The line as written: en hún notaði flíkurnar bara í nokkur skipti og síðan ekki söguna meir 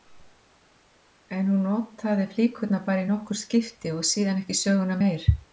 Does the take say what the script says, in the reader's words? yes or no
yes